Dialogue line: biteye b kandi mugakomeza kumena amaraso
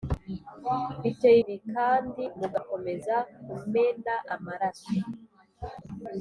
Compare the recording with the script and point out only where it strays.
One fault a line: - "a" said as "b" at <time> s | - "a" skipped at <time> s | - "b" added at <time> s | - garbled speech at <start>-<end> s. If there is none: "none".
none